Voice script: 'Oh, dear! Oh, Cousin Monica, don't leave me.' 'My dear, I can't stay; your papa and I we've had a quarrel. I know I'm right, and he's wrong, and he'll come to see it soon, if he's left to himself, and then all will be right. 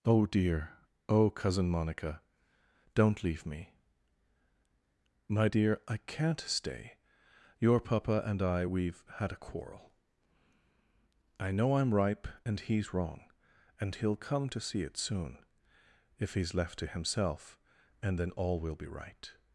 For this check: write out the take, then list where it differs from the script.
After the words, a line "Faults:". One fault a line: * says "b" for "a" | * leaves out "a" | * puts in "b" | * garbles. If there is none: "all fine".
'Oh, dear! Oh, Cousin Monica, don't leave me.' 'My dear, I can't stay; your papa and I we've had a quarrel. I know I'm ripe, and he's wrong, and he'll come to see it soon, if he's left to himself, and then all will be right.
Faults:
* says "ripe" for "right"